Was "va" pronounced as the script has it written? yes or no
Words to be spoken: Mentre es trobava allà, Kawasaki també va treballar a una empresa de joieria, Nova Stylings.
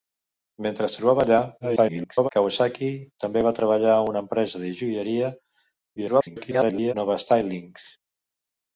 yes